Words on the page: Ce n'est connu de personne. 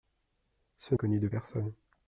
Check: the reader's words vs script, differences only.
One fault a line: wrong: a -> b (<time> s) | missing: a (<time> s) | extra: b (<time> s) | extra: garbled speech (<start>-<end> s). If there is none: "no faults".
missing: n'est (0.9 s)